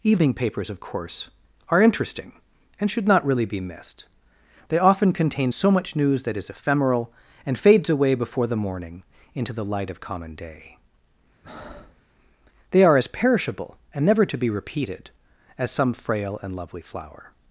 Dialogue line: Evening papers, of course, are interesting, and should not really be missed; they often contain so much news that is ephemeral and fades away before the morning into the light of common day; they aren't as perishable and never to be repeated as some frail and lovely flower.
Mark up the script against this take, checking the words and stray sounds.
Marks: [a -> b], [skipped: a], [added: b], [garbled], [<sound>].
Evening papers, of course, are interesting, and should not really be missed; they often contain so much news that is ephemeral and fades away before the morning into the light of common day; [breath] they [aren't -> are] as perishable and never to be repeated as some frail and lovely flower.